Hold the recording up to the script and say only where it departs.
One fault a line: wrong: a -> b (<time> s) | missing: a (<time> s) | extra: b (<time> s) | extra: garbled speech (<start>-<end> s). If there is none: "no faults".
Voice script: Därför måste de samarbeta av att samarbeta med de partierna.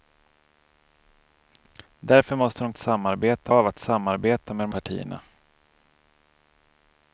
no faults